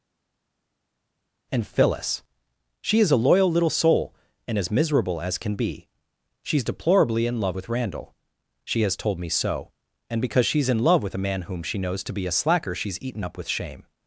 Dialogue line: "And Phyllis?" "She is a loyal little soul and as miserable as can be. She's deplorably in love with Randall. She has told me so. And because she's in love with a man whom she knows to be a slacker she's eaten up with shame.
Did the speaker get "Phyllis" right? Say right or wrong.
right